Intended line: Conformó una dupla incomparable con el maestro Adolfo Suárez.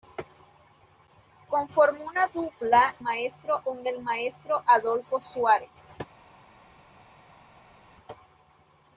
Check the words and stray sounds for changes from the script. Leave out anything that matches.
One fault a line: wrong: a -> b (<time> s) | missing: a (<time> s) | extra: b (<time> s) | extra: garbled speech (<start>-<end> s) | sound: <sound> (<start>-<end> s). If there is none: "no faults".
wrong: incomparable -> maestro (3.0 s)